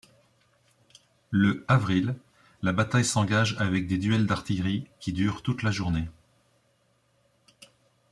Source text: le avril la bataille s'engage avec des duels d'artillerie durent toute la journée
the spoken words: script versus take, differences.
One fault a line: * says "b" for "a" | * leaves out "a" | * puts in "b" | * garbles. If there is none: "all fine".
* puts in "qui"